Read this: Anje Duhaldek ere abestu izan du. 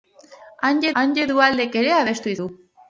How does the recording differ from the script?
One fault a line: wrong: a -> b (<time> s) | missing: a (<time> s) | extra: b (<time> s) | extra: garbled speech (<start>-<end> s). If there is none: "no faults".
extra: anje (1.0 s)
missing: izan (2.3 s)